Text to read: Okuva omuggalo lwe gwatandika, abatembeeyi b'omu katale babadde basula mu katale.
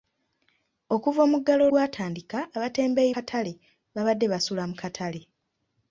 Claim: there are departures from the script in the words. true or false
true